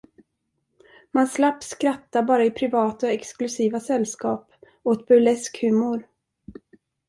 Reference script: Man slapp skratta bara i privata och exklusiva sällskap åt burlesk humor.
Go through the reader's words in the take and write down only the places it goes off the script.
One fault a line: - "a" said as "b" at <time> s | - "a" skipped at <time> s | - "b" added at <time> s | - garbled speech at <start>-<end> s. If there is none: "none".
none